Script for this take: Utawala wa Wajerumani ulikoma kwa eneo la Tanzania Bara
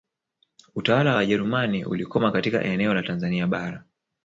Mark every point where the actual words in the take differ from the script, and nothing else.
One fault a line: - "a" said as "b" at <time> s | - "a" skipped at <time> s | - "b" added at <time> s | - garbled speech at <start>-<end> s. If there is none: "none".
- "kwa" said as "katika" at 2.3 s